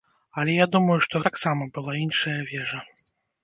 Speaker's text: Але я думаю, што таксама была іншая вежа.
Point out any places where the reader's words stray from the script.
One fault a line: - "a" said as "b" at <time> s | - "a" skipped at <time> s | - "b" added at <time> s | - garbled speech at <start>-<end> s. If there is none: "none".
none